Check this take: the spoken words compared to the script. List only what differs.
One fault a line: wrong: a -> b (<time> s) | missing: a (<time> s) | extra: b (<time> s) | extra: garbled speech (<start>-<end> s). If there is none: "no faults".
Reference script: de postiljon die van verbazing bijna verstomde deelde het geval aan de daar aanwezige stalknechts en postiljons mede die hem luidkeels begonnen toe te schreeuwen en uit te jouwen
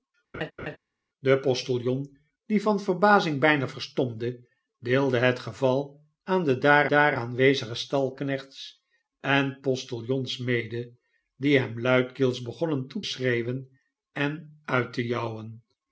extra: daar (6.8 s)
missing: te (13.0 s)